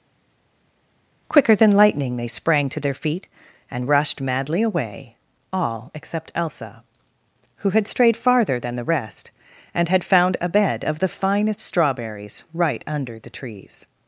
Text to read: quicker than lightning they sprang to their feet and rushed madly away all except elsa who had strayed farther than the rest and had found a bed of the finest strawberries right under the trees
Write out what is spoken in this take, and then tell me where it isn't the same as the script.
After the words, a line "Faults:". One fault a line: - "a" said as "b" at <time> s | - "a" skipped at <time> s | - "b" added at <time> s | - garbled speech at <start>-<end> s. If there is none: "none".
quicker than lightning they sprang to their feet and rushed madly away all except elsa who had strayed farther than the rest and had found a bed of the finest strawberries right under the trees
Faults:
none